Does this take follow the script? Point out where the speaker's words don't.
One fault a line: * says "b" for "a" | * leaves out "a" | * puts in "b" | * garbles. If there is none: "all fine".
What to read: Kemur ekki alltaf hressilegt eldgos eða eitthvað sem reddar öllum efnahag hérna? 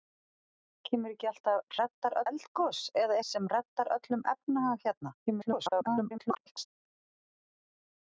* says "reddar" for "hressilegt"
* leaves out "eitthvað"
* garbles